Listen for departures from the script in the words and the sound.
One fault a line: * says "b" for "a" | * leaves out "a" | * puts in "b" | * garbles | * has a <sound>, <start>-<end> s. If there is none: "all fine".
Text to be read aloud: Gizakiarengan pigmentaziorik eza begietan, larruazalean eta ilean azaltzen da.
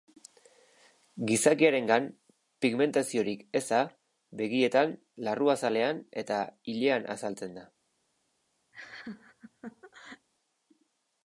* has a laugh, 8.7-10.3 s